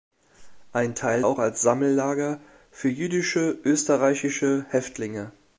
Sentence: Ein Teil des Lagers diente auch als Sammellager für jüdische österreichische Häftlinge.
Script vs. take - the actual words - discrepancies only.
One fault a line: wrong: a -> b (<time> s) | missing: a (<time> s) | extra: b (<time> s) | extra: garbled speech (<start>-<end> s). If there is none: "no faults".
missing: des Lagers diente (1.2 s)